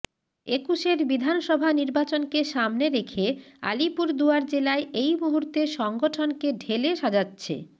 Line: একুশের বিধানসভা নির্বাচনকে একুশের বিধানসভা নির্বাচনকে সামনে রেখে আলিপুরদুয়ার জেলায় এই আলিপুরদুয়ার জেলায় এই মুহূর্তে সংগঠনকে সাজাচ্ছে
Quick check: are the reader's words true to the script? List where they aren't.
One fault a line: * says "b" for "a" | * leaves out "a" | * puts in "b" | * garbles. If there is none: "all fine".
* leaves out "একুশের বিধানসভা নির্বাচনকে"
* leaves out "আলিপুরদুয়ার জেলায় এই"
* puts in "ঢেলে"